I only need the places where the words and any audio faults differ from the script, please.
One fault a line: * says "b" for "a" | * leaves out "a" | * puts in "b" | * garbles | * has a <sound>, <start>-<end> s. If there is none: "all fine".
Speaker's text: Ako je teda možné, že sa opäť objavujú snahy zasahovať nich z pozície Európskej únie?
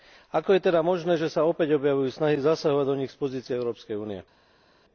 * puts in "do"